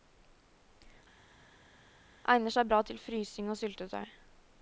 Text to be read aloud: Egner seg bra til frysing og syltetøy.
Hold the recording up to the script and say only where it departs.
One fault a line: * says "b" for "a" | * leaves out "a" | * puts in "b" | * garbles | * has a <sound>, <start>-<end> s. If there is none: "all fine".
all fine